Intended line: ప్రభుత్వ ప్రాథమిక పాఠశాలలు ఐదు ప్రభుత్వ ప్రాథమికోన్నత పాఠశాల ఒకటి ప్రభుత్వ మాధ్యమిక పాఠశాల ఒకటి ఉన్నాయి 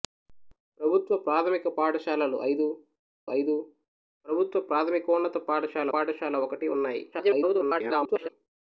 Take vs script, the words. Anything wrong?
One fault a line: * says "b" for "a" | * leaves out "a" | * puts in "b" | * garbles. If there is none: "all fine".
* puts in "ఐదు"
* leaves out "ఒకటి ప్రభుత్వ మాధ్యమిక"
* garbles